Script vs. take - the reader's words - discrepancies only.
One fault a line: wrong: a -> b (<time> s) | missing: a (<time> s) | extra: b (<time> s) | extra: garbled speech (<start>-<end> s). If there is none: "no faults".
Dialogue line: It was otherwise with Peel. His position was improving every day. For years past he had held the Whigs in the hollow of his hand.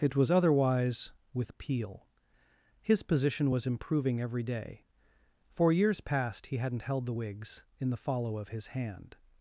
wrong: had -> hadn't (6.6 s)
wrong: hollow -> follow (8.0 s)